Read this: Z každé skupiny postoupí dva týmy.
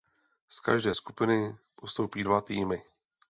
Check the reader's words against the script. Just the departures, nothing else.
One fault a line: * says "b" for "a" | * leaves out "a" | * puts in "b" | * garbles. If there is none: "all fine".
all fine